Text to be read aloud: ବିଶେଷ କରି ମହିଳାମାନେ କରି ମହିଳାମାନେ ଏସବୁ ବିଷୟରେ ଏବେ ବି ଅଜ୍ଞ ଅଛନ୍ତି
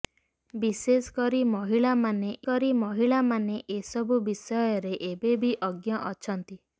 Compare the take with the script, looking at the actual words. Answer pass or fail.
pass